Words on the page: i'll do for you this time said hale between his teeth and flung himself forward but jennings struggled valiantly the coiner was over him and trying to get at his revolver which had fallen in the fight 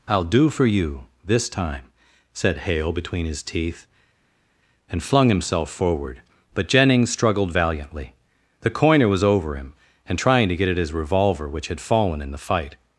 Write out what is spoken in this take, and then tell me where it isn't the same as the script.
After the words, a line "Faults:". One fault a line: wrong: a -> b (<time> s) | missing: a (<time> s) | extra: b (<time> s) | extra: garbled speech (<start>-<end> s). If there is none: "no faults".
i'll do for you this time said hale between his teeth and flung himself forward but jennings struggled valiantly the coiner was over him and trying to get at his revolver which had fallen in the fight
Faults:
no faults